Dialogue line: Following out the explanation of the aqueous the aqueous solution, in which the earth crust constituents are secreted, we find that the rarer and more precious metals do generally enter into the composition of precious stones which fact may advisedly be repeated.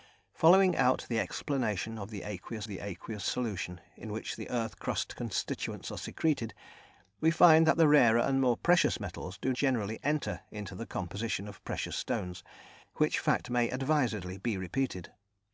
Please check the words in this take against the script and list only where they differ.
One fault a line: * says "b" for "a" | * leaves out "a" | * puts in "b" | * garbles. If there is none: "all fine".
all fine